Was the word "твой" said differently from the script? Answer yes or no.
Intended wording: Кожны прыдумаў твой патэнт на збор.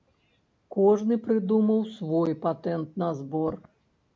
yes